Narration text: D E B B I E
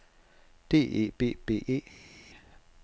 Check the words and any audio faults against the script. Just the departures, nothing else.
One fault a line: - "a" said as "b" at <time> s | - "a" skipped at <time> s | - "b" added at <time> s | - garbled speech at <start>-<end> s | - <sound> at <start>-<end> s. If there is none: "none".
- "I" skipped at 1.7 s